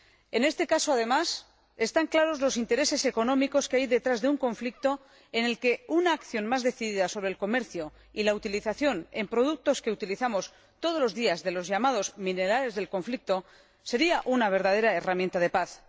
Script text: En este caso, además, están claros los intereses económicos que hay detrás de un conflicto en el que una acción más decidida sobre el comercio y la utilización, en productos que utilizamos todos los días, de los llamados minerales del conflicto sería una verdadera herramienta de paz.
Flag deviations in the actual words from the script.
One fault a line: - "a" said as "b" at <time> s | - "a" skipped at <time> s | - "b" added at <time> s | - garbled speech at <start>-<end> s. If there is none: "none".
none